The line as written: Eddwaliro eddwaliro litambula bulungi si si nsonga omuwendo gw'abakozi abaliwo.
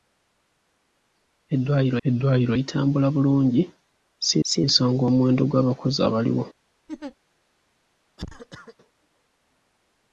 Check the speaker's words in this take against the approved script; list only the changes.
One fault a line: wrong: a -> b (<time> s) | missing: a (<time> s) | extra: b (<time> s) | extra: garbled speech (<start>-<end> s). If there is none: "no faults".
no faults